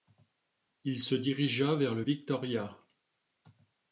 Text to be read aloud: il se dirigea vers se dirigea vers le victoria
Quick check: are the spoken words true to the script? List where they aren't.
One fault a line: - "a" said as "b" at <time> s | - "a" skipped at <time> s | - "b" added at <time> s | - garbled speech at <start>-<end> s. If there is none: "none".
- "se dirigea vers" skipped at 1.9 s